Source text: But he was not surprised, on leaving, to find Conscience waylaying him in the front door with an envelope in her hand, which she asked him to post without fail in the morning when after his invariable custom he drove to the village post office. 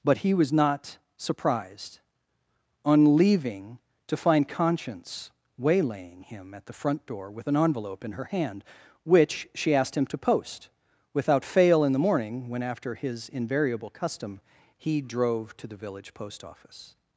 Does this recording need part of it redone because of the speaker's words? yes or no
yes